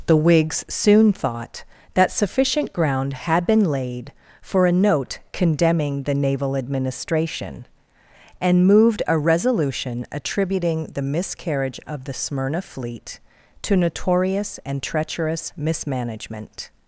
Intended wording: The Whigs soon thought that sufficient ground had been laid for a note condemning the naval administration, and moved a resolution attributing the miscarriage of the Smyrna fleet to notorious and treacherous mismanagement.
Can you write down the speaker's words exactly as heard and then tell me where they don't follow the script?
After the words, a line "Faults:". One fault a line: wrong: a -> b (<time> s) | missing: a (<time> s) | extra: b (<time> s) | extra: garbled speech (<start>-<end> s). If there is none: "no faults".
The Whigs soon thought that sufficient ground had been laid for a note condemning the naval administration, and moved a resolution attributing the miscarriage of the Smyrna fleet to notorious and treacherous mismanagement.
Faults:
no faults